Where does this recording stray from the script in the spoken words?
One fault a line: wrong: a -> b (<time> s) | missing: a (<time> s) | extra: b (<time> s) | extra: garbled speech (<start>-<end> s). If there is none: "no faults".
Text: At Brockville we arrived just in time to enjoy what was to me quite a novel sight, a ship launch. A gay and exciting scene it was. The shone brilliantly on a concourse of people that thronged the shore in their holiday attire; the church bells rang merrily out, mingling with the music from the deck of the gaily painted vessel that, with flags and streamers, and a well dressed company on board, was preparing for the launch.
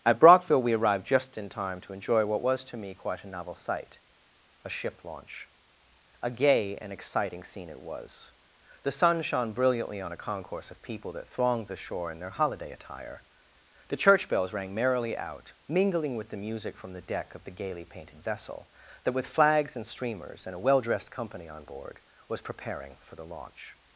extra: sun (8.9 s)